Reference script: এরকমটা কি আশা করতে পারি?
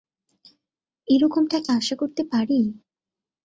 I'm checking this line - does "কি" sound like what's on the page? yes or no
yes